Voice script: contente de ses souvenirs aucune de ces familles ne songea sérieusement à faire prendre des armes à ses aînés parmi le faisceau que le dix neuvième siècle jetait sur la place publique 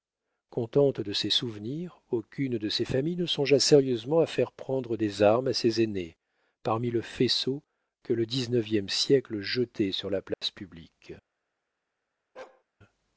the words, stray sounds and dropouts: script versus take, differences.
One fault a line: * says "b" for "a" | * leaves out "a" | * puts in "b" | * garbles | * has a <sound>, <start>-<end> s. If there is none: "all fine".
* has a dropout, 10.3-10.4 s
* has a bark, 12.3-12.6 s